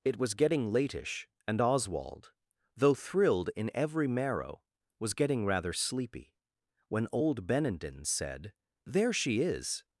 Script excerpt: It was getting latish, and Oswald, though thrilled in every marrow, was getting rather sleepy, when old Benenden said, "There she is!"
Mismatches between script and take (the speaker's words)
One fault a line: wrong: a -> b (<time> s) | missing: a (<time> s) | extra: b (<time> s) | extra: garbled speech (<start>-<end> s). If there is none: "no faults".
no faults